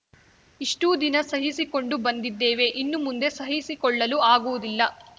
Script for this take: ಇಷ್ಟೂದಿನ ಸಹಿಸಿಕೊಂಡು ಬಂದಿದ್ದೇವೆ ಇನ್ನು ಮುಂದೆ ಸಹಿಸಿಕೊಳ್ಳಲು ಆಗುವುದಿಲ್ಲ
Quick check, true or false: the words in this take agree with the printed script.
true